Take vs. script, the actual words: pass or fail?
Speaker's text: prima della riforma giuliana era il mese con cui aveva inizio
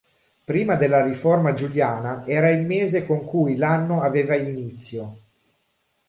fail